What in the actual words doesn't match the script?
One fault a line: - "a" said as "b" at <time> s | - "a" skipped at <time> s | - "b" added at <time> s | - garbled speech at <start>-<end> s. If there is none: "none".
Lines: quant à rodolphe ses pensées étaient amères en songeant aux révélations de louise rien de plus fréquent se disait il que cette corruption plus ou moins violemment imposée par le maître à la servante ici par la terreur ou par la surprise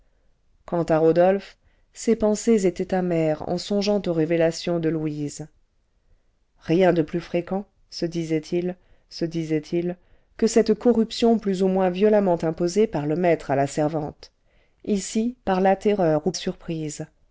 - "se disait il" added at 9.1 s
- "par la" skipped at 16.3 s